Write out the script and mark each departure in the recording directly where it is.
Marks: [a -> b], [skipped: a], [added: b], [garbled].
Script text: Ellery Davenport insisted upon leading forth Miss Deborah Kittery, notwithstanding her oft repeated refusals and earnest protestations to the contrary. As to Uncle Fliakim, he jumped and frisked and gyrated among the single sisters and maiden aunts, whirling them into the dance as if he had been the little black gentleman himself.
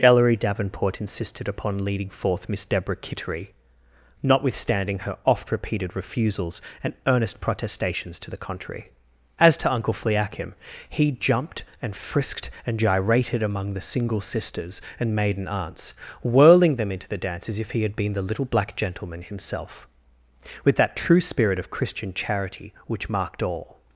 Ellery Davenport insisted upon leading forth Miss Deborah Kittery, notwithstanding her oft repeated refusals and earnest protestations to the contrary. As to Uncle Fliakim, he jumped and frisked and gyrated among the single sisters and maiden aunts, whirling them into the dance as if he had been the little black gentleman himself. [added: With that true spirit of Christian charity which marked all]